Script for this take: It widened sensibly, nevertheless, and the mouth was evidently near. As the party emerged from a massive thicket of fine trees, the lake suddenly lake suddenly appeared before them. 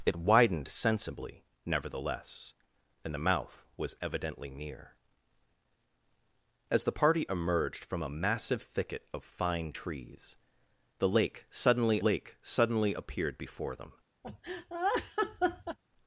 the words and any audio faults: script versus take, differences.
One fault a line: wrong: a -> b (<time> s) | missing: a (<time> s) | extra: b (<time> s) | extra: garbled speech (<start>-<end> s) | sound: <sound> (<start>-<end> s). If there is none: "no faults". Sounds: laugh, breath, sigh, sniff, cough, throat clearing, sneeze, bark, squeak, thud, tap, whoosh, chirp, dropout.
sound: laugh (14.2-15.8 s)